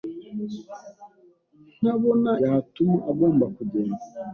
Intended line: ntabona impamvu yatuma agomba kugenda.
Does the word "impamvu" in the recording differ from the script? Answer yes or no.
yes